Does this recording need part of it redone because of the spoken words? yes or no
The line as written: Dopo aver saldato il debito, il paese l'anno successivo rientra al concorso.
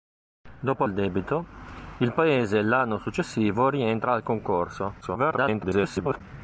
yes